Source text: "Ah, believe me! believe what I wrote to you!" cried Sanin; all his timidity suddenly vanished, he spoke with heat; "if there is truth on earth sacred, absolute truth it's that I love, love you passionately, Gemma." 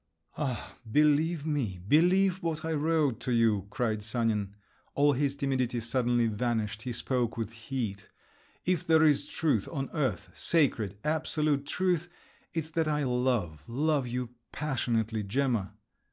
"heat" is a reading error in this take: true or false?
false